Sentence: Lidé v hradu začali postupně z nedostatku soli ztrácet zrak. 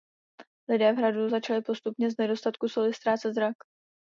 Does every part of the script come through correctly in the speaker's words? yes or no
yes